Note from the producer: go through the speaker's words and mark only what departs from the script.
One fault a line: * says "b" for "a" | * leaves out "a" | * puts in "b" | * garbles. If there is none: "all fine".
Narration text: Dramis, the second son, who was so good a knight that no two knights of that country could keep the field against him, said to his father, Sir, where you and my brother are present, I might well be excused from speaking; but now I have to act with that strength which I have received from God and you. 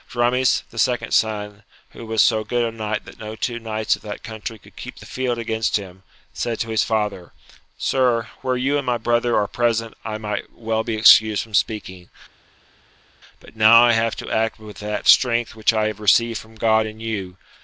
all fine